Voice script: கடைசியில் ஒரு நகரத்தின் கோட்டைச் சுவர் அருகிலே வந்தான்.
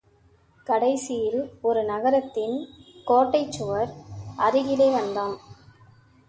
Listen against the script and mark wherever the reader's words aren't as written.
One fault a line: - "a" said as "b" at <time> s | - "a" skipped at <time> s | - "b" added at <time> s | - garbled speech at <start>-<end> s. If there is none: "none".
none